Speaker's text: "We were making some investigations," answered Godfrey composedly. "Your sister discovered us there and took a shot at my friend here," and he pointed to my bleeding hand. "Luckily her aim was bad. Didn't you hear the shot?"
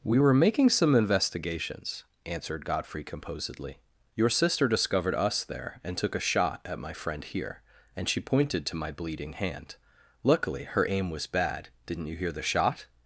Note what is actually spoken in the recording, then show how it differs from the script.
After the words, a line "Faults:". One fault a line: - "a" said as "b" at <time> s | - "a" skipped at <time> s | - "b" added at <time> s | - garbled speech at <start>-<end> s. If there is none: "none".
"We were making some investigations," answered Godfrey composedly. "Your sister discovered us there and took a shot at my friend here," and she pointed to my bleeding hand. "Luckily her aim was bad. Didn't you hear the shot?"
Faults:
- "he" said as "she" at 8.1 s